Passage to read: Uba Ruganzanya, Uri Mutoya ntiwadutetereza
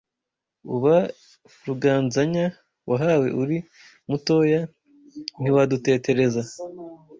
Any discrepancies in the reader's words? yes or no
yes